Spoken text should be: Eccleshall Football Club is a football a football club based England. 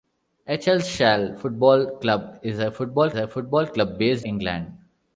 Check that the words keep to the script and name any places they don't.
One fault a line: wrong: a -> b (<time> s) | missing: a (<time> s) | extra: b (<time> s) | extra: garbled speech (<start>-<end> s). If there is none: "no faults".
no faults